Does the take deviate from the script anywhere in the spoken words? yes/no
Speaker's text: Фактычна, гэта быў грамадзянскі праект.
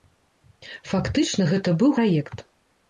yes